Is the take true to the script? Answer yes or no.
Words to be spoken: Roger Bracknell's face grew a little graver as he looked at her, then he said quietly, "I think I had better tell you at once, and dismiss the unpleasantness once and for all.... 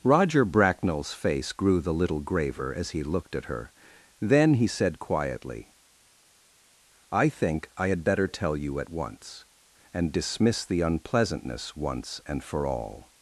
no